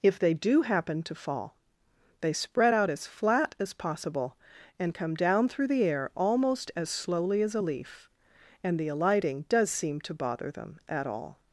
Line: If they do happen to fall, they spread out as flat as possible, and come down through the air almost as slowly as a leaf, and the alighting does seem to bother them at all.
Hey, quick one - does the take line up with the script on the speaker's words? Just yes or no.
yes